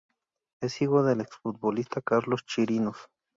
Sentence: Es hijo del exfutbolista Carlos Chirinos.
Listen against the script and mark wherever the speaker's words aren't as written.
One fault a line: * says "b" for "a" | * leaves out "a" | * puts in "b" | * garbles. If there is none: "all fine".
all fine